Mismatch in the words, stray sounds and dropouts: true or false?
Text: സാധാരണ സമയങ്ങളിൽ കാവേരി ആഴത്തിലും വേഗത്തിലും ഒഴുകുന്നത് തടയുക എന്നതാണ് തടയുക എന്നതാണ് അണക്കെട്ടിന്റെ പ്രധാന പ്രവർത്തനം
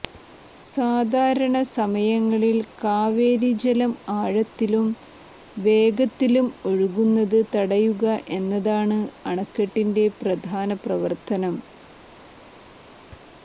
true